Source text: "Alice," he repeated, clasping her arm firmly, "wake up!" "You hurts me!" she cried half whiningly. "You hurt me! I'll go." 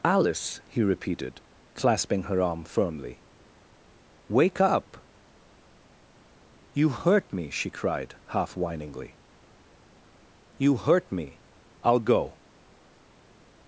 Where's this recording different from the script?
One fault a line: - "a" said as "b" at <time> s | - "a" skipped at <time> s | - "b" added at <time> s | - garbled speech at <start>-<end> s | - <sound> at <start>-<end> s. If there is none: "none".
- "hurts" said as "hurt" at 6.9 s